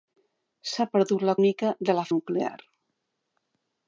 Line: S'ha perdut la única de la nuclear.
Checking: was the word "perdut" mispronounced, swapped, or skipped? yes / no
no